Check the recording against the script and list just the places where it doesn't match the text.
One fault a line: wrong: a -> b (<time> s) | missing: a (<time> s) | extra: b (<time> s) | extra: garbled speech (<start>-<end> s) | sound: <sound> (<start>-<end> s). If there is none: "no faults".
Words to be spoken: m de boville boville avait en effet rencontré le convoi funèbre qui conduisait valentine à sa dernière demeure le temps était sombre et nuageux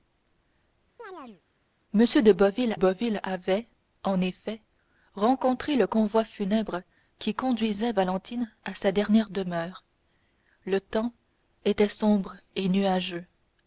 sound: chirp (1.0-1.4 s)